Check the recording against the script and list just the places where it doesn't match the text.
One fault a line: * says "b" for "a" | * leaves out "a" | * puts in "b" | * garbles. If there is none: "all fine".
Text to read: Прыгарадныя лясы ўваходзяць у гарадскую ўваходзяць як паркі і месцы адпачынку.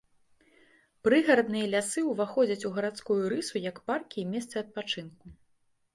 * says "рысу" for "ўваходзяць"